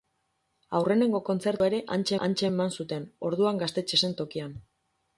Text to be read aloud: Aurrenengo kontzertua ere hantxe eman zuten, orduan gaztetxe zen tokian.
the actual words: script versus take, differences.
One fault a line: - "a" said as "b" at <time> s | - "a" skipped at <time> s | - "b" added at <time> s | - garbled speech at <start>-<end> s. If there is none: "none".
- "hantxe" added at 2.3 s